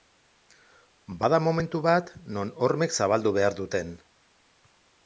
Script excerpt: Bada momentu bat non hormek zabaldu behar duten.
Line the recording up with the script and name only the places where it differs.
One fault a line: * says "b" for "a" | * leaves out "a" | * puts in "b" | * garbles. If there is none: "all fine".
all fine